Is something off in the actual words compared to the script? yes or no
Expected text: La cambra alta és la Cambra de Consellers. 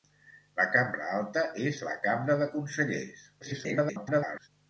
yes